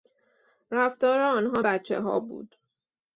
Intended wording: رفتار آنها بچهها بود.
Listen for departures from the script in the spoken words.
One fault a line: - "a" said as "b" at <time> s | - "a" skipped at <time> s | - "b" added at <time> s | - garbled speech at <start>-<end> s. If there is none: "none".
none